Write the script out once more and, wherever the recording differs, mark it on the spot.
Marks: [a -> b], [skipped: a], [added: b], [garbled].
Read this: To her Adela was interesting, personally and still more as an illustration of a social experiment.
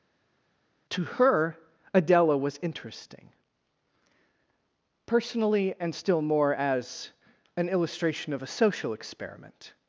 To her Adela was interesting, personally and still more as an illustration of a social experiment.